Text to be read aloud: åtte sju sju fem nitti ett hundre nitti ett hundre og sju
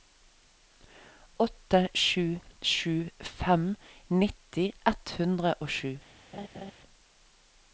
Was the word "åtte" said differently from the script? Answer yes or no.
no